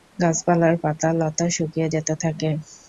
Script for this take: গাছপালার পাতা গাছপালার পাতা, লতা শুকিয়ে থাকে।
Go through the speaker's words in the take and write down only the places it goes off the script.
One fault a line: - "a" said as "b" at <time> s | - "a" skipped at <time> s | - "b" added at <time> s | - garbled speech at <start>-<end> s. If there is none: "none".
- "গাছপালার পাতা" skipped at 1.1 s
- "যেতে" added at 1.9 s